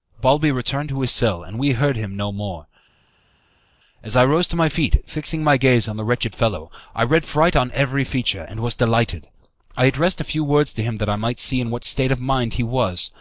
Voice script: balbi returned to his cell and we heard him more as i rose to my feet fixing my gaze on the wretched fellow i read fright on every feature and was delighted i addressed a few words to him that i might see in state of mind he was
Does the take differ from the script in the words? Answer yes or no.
yes